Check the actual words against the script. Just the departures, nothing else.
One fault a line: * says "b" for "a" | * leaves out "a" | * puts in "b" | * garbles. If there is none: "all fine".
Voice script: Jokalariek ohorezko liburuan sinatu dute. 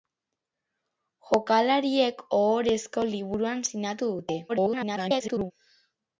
* garbles